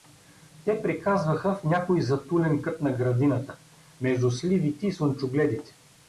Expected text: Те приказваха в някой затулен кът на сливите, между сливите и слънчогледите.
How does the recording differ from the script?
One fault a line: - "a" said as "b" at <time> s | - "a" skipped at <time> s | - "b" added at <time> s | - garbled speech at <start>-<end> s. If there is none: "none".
- "сливите" said as "градината" at 2.9 s